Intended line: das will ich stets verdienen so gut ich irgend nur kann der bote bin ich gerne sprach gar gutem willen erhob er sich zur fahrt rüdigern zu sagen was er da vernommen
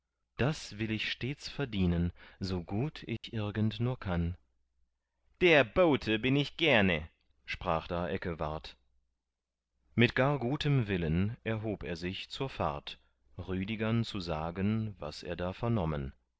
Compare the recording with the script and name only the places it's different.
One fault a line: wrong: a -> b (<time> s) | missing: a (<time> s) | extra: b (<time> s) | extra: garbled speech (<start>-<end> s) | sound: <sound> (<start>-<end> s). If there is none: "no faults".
sound: dropout (3.2-3.2 s)
extra: da eckewart mit (7.8 s)